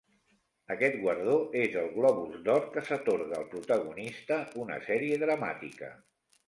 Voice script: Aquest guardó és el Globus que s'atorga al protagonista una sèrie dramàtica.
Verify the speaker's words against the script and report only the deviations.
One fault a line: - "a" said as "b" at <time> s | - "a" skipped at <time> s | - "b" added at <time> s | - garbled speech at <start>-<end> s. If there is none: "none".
- "d'Or" added at 2.5 s